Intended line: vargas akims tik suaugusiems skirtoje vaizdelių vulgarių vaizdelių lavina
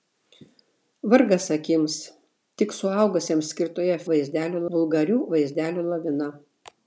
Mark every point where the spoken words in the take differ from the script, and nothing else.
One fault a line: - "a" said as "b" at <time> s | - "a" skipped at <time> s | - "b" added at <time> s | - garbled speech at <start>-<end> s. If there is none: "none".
none